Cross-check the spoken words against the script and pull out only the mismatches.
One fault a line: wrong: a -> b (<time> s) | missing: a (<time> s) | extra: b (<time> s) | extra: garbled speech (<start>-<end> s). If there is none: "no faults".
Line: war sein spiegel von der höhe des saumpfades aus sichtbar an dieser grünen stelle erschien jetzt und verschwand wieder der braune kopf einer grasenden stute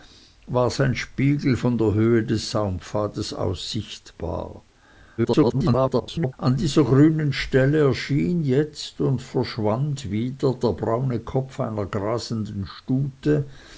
extra: garbled speech (5.2-6.3 s)